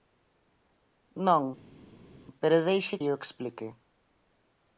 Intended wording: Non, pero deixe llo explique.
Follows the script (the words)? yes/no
yes